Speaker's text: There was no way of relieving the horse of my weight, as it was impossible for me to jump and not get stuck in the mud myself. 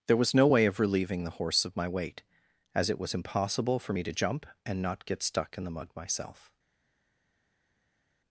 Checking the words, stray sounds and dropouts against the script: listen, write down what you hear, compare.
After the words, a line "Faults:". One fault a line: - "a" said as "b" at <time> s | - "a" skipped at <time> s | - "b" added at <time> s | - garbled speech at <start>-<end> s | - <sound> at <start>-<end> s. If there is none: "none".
There was no way of relieving the horse of my weight, as it was impossible for me to jump and not get stuck in the mud myself.
Faults:
none